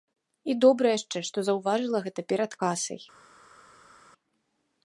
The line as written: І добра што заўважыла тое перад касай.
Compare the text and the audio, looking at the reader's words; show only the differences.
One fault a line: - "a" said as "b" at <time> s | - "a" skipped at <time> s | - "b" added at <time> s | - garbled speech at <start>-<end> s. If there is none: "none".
- "яшчэ" added at 1.0 s
- "тое" said as "гэта" at 2.1 s